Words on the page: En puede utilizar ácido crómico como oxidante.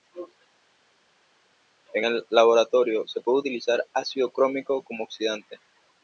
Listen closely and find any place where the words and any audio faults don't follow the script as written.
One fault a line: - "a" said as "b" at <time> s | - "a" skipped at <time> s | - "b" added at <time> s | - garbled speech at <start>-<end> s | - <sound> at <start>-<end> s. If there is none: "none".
- "el laboratorio se" added at 2.0 s